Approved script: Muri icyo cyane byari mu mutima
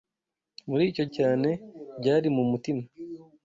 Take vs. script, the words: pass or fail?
pass